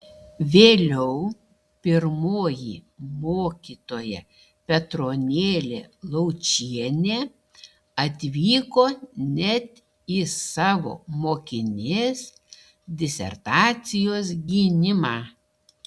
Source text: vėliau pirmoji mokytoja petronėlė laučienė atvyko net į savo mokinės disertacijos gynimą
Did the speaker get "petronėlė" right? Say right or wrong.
right